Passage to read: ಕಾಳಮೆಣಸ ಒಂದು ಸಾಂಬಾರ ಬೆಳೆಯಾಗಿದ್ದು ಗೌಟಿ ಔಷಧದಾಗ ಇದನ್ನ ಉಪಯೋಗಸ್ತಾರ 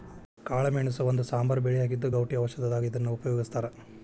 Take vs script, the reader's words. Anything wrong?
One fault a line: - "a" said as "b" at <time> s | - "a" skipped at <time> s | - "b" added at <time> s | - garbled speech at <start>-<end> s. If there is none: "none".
none